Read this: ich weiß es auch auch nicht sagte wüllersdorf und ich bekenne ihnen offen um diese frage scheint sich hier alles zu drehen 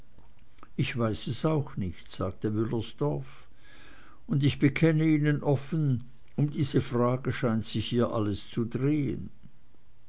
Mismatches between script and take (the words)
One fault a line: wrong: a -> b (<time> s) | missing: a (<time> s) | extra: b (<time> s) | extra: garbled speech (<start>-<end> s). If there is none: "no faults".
missing: auch (1.8 s)